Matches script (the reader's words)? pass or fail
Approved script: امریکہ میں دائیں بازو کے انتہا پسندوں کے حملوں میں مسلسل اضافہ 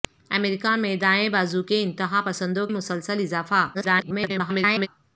fail